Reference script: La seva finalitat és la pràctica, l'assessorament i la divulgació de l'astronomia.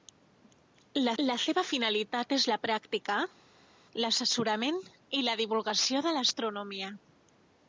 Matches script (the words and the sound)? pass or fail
fail